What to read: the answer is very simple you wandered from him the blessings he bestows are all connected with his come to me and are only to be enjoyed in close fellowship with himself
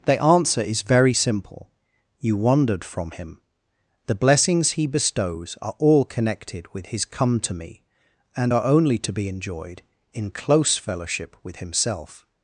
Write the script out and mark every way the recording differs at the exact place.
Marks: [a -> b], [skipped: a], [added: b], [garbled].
the answer is very simple you wandered from him the blessings he bestows are all connected with his come to me and are only to be enjoyed in close fellowship with himself